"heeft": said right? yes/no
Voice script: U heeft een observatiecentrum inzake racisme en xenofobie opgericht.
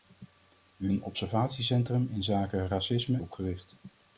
no